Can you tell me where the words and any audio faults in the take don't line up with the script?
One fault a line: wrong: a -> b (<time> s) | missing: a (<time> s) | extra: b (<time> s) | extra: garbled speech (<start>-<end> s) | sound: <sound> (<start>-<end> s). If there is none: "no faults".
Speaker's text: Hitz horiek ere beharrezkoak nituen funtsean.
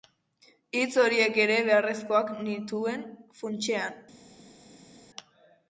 no faults